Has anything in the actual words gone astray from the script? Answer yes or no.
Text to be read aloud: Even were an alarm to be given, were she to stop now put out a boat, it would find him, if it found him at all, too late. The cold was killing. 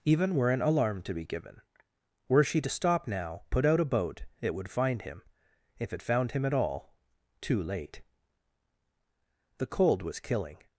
no